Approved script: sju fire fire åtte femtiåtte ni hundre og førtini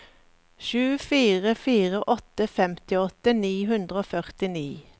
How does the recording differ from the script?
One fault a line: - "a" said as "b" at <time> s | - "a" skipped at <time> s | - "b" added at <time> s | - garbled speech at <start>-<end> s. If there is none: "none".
none